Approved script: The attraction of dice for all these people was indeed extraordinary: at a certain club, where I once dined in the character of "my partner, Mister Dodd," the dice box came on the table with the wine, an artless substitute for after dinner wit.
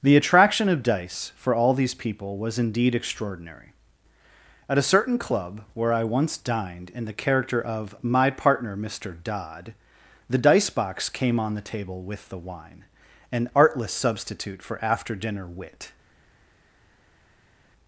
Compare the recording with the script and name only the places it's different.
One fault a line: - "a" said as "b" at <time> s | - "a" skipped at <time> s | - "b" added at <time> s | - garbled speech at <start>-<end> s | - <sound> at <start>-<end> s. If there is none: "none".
none